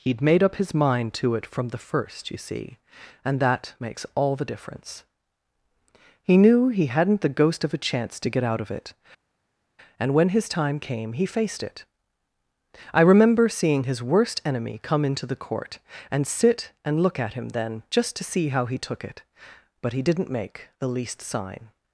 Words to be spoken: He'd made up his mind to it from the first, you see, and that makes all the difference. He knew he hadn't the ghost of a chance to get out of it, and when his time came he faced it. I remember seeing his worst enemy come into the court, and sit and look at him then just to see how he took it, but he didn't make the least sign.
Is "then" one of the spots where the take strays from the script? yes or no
no